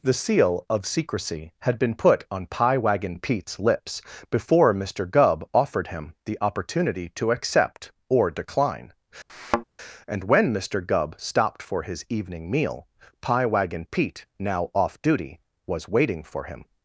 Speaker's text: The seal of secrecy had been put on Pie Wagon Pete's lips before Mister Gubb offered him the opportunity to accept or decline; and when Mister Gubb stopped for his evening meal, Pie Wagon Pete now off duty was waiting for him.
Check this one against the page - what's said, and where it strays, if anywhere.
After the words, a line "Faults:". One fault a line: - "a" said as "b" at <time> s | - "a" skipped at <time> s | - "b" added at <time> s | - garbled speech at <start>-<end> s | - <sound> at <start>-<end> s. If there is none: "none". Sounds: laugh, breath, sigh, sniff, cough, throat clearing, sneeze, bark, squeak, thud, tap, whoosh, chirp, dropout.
The seal of secrecy had been put on Pie Wagon Pete's lips before Mister Gubb offered him the opportunity to accept or decline; and when Mister Gubb stopped for his evening meal, Pie Wagon Pete now off duty was waiting for him.
Faults:
- thud at 9.3-9.6 s